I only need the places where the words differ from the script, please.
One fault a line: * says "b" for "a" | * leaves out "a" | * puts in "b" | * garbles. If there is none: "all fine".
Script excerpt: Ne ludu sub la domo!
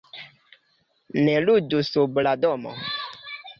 all fine